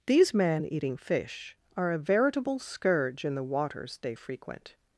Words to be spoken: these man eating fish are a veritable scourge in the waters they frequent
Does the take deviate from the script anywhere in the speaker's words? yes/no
no